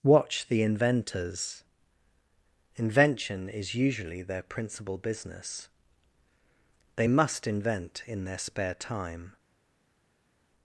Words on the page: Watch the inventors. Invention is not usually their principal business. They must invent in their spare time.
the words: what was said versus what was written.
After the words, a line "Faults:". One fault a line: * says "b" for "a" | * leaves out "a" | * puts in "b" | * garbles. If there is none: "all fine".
Watch the inventors. Invention is usually their principal business. They must invent in their spare time.
Faults:
* leaves out "not"